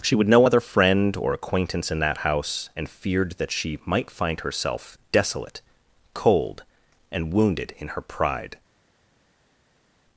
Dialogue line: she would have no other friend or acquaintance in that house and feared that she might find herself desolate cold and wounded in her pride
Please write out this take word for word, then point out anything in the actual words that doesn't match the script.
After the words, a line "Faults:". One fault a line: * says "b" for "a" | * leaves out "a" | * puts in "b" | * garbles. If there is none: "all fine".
she would no other friend or acquaintance in that house and feared that she might find herself desolate cold and wounded in her pride
Faults:
* leaves out "have"